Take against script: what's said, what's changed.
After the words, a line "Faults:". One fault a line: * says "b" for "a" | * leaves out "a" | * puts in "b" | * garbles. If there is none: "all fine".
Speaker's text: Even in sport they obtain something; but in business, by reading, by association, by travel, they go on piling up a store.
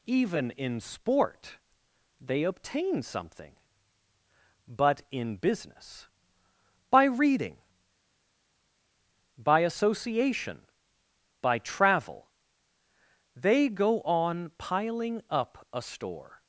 Even in sport they obtain something; but in business, by reading, by association, by travel, they go on piling up a store.
Faults:
all fine